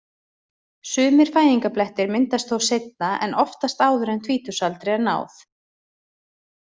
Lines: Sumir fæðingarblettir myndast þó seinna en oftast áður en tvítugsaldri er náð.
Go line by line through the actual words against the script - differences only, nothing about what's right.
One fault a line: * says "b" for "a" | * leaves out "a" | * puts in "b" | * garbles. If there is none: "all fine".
all fine